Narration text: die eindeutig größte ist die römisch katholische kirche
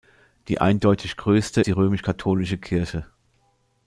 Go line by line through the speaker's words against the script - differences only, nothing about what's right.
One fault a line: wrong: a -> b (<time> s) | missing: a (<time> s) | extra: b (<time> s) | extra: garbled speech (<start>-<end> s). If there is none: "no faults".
missing: ist (1.6 s)